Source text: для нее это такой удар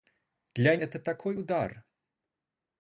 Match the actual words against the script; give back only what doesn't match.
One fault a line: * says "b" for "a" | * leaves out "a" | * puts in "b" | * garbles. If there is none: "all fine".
* leaves out "нее"